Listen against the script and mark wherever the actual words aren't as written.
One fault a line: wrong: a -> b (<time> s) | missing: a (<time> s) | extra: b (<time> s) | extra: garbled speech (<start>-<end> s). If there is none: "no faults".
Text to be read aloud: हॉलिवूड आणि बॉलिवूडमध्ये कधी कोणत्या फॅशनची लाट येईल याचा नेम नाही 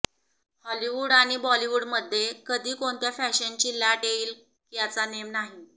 no faults